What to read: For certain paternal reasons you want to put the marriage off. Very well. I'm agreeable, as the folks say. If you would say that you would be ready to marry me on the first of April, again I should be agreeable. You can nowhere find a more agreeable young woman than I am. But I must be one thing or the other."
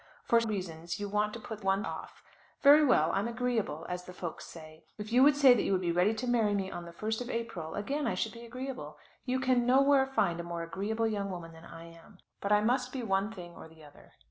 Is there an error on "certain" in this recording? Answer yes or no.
yes